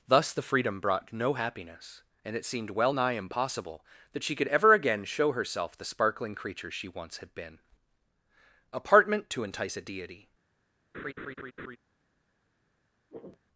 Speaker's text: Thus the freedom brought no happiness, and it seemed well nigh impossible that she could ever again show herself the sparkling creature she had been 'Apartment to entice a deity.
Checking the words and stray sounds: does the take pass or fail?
fail